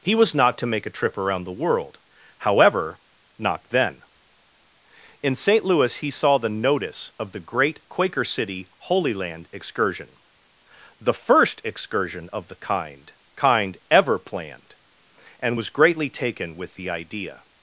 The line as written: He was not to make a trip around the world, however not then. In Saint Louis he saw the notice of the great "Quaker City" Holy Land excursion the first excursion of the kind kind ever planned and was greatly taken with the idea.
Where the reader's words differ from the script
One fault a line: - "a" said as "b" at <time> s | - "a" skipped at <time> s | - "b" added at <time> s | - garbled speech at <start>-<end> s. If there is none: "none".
none